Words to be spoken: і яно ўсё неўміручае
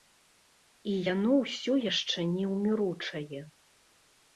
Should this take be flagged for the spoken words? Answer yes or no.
yes